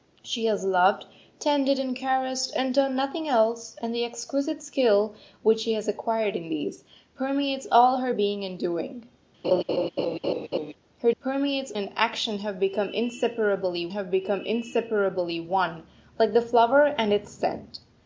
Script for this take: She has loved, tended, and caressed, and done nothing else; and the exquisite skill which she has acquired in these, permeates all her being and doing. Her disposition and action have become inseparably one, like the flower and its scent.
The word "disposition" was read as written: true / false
false